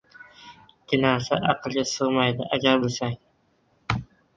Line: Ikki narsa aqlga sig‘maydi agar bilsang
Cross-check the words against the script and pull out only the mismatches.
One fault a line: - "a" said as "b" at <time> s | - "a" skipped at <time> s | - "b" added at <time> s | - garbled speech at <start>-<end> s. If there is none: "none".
none